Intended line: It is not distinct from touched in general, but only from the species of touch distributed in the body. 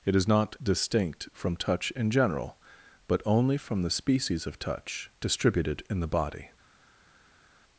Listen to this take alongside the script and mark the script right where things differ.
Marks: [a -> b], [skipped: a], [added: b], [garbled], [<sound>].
It is not distinct from [touched -> touch] in general, but only from the species of touch distributed in the body.